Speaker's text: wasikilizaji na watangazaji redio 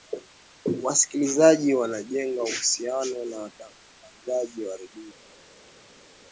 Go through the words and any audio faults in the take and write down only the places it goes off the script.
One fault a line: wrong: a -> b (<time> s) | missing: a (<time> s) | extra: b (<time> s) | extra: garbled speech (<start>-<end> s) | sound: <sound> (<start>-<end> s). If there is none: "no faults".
extra: wanajenga uhusiano (1.7 s)
extra: wa (4.7 s)